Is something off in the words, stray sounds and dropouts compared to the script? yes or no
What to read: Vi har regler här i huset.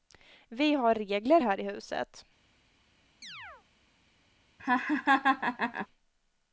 yes